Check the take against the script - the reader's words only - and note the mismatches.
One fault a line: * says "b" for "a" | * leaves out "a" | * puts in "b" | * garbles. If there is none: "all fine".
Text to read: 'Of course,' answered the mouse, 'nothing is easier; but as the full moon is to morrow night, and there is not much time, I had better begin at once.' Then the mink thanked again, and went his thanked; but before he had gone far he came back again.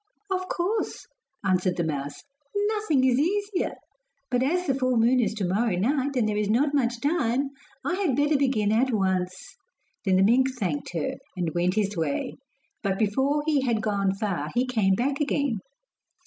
* says "her" for "again"
* says "way" for "thanked"